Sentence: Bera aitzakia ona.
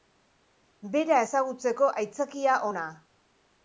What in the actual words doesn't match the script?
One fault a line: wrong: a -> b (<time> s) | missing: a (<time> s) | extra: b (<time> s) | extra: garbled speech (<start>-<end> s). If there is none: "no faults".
extra: ezagutzeko (1.2 s)